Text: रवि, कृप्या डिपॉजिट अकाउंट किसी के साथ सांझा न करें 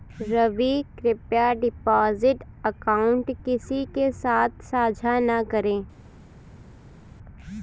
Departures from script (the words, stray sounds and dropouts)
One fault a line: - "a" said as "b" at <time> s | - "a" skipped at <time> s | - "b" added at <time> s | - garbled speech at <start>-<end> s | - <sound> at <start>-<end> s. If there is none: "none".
none